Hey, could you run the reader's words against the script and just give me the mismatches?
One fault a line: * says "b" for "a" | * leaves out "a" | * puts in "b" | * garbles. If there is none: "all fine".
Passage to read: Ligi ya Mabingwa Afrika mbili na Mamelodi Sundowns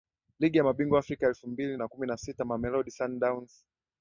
* puts in "elfu"
* puts in "kumi na sita"